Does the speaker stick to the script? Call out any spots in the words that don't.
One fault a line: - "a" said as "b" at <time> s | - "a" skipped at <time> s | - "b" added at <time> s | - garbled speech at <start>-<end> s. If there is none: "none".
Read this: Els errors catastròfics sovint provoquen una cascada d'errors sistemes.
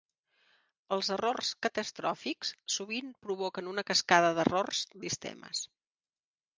none